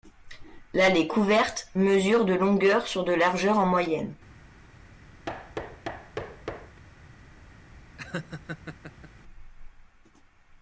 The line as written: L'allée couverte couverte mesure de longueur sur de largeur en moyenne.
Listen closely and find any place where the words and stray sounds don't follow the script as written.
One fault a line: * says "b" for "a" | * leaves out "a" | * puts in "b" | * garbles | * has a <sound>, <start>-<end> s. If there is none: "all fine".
* leaves out "couverte"
* has a thud, 5.3-6.8 s
* has a laugh, 8.0-9.1 s